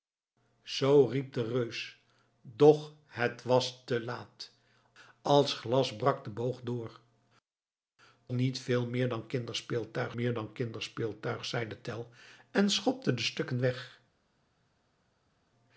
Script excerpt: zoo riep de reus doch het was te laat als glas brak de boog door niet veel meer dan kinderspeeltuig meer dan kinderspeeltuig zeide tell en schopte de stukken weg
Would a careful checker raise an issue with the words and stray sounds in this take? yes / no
no